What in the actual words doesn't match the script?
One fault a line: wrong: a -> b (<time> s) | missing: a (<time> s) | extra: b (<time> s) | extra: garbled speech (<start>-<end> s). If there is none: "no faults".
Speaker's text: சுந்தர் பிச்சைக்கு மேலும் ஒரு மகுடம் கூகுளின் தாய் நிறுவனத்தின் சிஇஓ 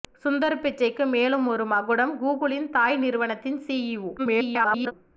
extra: garbled speech (4.2-4.9 s)